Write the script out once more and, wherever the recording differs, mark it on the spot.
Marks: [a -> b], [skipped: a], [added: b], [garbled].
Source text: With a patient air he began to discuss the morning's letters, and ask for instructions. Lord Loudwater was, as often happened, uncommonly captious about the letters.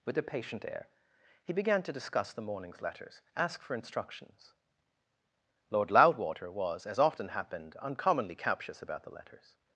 With a patient air he began to discuss the morning's letters, [skipped: and] ask for instructions. Lord Loudwater was, as often happened, uncommonly captious about the letters.